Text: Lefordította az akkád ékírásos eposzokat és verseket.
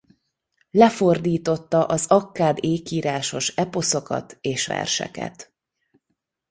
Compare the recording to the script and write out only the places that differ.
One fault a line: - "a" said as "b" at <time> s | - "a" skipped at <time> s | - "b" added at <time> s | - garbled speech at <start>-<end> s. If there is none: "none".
none